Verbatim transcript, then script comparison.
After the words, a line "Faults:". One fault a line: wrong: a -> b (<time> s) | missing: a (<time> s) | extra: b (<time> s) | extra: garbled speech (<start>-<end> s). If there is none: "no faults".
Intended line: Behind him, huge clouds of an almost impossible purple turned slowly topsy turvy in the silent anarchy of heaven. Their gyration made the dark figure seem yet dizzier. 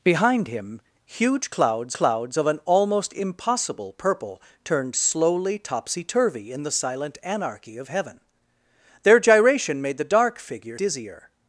Behind him, huge clouds clouds of an almost impossible purple turned slowly topsy turvy in the silent anarchy of heaven. Their gyration made the dark figure dizzier.
Faults:
extra: clouds (1.9 s)
missing: seem yet (10.8 s)